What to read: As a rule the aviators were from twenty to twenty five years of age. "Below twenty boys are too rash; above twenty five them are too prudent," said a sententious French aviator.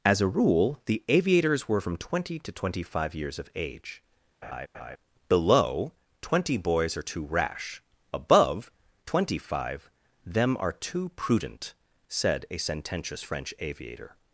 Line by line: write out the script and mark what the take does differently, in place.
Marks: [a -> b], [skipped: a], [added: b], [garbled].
As a rule the aviators were from twenty to twenty five years of age. "Below twenty boys are too rash; above twenty five them are too prudent," said a sententious French aviator.